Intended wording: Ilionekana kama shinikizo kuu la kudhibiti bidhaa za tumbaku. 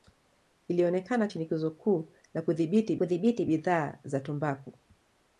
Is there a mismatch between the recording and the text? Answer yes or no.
yes